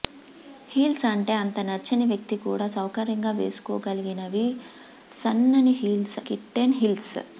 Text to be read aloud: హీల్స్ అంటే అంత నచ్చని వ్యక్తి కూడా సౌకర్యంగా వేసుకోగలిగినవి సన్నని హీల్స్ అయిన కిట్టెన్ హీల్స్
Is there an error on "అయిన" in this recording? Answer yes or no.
yes